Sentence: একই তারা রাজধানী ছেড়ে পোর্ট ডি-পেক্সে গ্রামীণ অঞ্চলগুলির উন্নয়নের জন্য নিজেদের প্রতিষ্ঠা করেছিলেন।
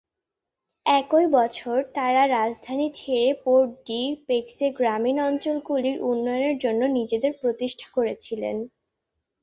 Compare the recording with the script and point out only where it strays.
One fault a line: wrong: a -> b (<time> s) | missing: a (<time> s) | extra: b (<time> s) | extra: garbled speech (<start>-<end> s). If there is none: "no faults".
extra: বছর (1.4 s)